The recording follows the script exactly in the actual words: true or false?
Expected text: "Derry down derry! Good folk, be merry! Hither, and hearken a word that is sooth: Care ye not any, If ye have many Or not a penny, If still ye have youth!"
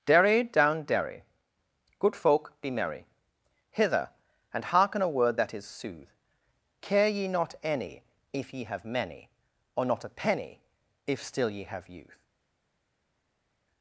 true